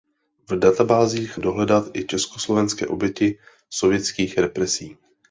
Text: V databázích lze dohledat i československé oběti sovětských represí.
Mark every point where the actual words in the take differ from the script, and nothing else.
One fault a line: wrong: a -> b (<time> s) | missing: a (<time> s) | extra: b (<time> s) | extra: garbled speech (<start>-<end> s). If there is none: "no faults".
missing: lze (1.4 s)